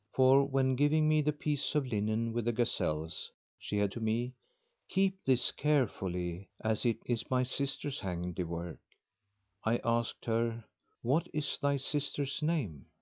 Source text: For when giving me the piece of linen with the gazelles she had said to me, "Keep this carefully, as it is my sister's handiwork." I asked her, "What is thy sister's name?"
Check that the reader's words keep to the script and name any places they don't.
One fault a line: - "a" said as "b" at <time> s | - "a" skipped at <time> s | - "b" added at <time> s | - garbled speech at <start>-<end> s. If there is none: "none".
- "said" skipped at 3.9 s